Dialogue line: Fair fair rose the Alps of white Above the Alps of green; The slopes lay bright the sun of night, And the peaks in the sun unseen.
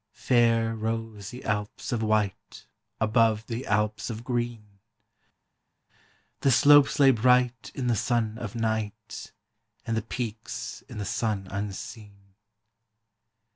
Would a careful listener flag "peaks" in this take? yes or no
no